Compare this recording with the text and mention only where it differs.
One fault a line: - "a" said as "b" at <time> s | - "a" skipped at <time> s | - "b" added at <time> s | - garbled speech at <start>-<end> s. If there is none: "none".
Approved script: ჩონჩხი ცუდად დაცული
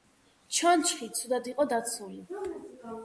- "იყო" added at 1.5 s